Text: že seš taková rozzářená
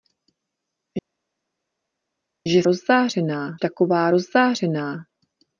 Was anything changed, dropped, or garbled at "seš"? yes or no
yes